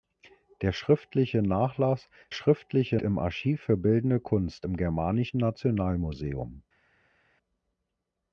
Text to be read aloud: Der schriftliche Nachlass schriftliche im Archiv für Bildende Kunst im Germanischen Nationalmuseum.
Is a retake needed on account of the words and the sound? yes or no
no